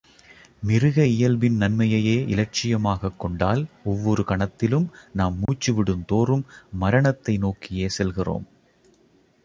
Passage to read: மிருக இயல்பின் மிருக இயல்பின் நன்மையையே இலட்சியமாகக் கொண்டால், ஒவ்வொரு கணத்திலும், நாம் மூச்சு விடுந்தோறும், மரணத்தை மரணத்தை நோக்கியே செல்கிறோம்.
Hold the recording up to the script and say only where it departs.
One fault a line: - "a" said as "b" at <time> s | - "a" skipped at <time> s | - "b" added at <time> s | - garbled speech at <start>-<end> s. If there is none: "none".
- "மிருக இயல்பின்" skipped at 1.6 s
- "மரணத்தை" skipped at 7.4 s